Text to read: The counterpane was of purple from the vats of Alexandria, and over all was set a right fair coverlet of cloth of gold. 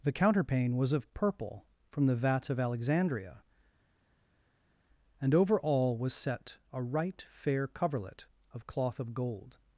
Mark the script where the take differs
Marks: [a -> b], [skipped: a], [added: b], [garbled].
The counterpane was of purple from the vats of Alexandria, and over all was set a right fair coverlet of cloth of gold.